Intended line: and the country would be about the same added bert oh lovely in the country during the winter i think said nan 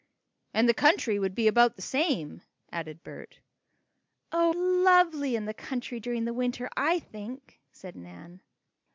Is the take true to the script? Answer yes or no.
yes